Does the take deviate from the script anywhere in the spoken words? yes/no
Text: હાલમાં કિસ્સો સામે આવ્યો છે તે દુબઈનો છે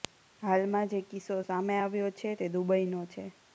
yes